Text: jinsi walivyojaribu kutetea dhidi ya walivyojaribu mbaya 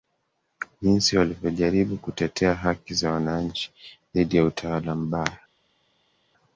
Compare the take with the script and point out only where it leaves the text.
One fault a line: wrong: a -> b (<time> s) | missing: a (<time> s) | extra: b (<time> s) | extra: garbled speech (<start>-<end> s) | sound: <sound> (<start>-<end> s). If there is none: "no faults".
extra: haki za wananchi (2.5 s)
wrong: walivyojaribu -> utawala (4.4 s)